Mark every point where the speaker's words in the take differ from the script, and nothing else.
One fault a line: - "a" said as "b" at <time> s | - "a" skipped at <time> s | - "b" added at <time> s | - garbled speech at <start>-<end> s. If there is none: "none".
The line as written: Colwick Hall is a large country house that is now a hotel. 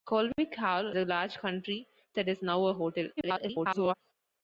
- "is" skipped at 0.9 s
- "house" skipped at 1.9 s
- garbled speech at 3.2-3.9 s